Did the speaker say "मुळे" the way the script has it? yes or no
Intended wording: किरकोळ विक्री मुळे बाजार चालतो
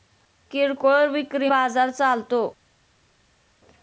no